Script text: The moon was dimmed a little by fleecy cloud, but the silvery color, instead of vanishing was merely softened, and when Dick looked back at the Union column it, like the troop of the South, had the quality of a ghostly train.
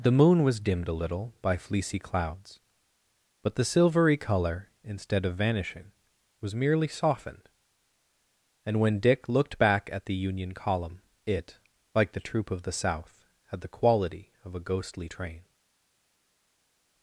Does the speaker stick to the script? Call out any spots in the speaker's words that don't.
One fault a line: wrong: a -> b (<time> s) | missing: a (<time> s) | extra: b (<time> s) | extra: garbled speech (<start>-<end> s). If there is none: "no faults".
wrong: cloud -> clouds (2.0 s)